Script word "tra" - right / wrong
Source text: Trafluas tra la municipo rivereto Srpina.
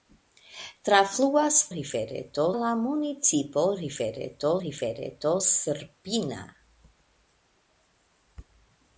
wrong